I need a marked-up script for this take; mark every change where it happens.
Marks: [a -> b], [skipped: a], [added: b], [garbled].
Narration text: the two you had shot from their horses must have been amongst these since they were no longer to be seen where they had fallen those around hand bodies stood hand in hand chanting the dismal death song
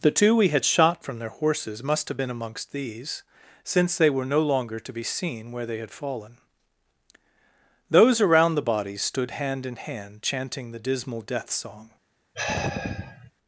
the two [you -> we] had shot from their horses must have been amongst these since they were no longer to be seen where they had fallen those around [hand -> the] bodies stood hand in hand chanting the dismal death song